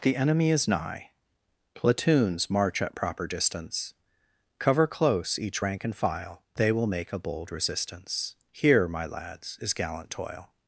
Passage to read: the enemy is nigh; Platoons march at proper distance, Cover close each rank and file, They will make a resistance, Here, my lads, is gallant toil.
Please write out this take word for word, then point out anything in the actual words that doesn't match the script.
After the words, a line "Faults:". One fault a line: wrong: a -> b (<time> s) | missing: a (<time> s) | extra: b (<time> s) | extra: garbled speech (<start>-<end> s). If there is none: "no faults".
the enemy is nigh; Platoons march at proper distance, Cover close each rank and file, They will make a bold resistance, Here, my lads, is gallant toil.
Faults:
extra: bold (7.2 s)